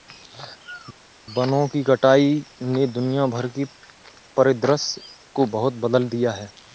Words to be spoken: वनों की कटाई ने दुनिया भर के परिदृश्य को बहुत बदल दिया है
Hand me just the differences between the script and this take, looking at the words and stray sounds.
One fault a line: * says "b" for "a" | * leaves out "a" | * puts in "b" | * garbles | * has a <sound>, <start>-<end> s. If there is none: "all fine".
all fine